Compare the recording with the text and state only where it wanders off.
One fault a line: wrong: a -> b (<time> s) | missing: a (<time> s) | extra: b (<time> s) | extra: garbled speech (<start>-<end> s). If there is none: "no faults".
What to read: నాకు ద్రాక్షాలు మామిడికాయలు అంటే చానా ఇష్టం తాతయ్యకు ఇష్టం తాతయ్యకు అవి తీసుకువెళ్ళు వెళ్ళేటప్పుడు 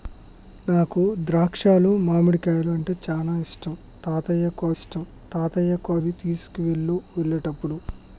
no faults